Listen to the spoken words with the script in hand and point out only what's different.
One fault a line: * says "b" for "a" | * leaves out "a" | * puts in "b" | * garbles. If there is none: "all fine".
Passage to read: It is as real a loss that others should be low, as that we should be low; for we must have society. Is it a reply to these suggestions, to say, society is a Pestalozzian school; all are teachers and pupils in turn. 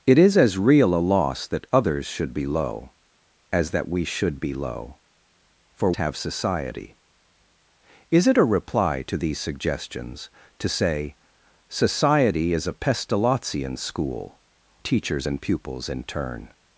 * leaves out "we must"
* leaves out "all are"